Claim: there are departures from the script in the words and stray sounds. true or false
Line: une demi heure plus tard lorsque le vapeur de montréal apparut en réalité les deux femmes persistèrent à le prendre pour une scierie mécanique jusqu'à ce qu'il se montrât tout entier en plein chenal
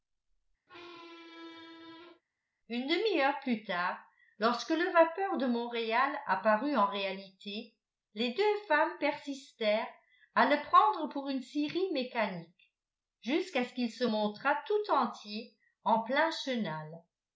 true